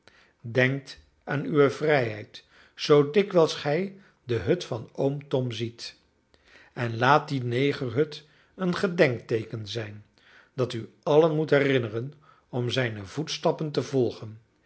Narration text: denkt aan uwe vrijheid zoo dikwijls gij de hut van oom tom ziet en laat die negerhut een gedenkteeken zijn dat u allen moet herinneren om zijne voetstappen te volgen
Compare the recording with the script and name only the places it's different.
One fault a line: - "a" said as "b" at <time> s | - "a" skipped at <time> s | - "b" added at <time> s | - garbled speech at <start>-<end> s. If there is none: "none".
none